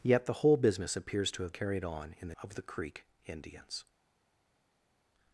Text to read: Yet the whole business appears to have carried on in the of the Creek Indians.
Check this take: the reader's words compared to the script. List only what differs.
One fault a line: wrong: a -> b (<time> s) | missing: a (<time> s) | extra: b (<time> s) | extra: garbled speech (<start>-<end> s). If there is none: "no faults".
no faults